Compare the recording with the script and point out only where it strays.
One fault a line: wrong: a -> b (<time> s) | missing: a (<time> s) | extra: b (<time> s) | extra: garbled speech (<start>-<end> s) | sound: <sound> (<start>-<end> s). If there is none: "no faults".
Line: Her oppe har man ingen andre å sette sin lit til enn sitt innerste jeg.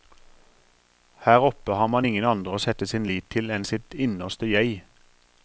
no faults